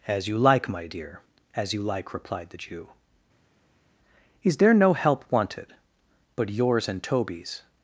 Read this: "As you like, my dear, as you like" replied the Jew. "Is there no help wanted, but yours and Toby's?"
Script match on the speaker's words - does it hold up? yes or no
yes